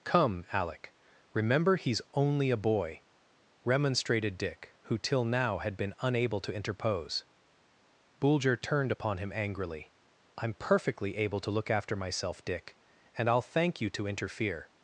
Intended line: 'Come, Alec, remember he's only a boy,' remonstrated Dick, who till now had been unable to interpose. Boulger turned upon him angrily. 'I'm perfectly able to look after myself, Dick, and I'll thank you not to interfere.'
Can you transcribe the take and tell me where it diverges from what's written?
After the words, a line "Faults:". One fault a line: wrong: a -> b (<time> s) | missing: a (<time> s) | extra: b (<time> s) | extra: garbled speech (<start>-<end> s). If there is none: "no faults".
'Come, Alec, remember he's only a boy,' remonstrated Dick, who till now had been unable to interpose. Boulger turned upon him angrily. 'I'm perfectly able to look after myself, Dick, and I'll thank you to interfere.'
Faults:
missing: not (13.9 s)